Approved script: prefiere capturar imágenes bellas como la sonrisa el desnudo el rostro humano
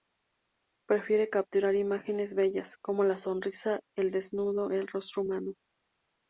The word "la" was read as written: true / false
true